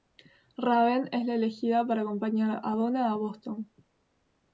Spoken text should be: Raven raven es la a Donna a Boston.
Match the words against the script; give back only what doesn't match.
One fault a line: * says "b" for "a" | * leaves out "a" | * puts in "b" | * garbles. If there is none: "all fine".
* leaves out "raven"
* puts in "elegida para acompañar"